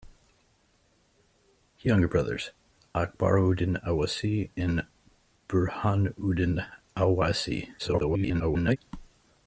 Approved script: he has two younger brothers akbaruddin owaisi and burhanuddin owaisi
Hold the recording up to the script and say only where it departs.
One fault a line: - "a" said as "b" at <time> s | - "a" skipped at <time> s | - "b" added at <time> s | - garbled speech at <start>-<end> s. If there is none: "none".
- "has two" skipped at 1.9 s
- garbled speech at 7.8-8.8 s